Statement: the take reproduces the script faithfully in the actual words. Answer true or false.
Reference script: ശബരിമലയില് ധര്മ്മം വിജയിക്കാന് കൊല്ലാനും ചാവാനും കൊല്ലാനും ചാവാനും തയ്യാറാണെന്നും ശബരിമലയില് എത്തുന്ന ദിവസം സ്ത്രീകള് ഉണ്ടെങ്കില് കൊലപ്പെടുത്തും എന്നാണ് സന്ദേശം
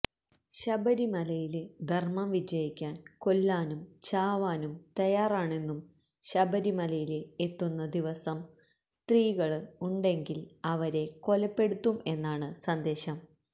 false